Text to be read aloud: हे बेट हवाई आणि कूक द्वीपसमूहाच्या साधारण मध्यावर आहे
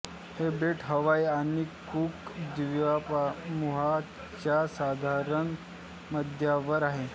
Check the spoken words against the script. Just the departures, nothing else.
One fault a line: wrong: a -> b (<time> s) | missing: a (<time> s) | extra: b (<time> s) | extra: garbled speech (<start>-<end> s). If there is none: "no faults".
no faults